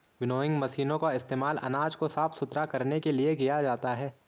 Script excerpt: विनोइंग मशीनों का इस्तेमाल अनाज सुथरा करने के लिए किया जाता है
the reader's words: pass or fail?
fail